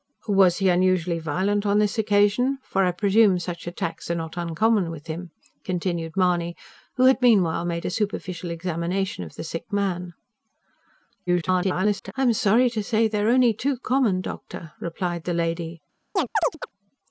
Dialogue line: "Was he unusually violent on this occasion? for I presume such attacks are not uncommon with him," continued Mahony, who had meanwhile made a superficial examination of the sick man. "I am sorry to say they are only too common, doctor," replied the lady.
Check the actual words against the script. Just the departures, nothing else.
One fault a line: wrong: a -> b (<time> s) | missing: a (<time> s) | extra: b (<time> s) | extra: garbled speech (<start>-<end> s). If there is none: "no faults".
extra: garbled speech (11.3-12.1 s)